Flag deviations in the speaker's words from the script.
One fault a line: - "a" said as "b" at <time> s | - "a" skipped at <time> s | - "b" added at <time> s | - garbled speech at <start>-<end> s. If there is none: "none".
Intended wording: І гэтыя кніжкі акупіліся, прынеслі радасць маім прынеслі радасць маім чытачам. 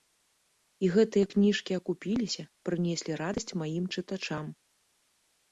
- "прынеслі радасць маім" skipped at 3.8 s